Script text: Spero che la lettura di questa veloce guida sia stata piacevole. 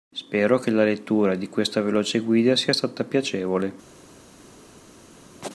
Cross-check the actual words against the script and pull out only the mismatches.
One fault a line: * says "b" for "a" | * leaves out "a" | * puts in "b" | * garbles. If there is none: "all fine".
all fine